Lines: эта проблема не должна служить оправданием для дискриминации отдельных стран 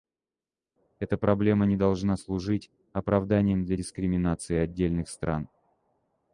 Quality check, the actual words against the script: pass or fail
pass